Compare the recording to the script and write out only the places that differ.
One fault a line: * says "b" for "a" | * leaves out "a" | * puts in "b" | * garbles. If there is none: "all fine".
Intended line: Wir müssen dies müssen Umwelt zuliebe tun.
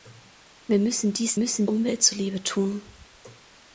all fine